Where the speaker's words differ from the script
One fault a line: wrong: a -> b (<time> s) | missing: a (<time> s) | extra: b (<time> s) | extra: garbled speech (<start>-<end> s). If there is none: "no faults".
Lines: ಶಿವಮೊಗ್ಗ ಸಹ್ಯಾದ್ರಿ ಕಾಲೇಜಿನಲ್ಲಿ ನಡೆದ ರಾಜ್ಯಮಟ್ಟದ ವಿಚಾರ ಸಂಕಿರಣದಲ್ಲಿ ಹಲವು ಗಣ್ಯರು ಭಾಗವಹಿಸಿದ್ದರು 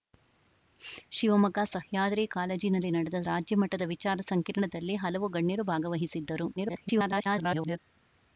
extra: garbled speech (6.6-7.8 s)